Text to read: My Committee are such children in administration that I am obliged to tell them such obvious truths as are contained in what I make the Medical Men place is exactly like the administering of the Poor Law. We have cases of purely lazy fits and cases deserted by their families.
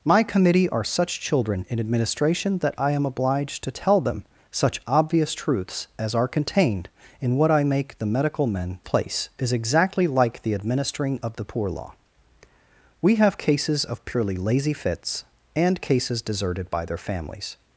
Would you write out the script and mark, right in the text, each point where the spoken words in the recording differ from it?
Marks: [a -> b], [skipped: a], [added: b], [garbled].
My Committee are such children in administration that I am obliged to tell them such obvious truths as are contained in what I make the Medical Men place is exactly like the administering of the Poor Law. We have cases of purely lazy fits and cases deserted by their families.